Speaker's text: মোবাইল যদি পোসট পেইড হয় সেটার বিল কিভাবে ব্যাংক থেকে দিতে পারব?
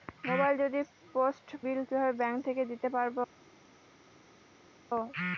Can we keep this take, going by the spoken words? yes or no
no